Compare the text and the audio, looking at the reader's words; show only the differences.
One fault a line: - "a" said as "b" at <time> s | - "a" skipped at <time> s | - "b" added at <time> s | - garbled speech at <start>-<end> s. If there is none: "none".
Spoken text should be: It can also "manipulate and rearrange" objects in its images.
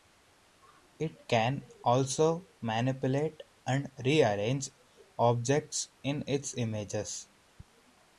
none